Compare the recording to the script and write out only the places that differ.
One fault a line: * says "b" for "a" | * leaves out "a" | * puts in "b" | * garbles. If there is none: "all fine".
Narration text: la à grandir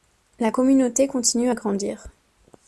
* puts in "communauté continue"